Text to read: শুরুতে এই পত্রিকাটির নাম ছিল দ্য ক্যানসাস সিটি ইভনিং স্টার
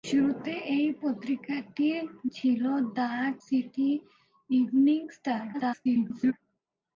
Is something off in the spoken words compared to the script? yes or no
yes